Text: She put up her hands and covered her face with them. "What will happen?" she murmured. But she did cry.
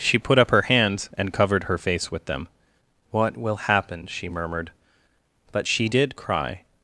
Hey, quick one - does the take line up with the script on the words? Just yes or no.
yes